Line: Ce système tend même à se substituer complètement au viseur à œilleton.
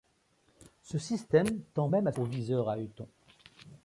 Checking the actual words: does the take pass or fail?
fail